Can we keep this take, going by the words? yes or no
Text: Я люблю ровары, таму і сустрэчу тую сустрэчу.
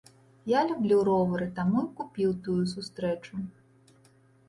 no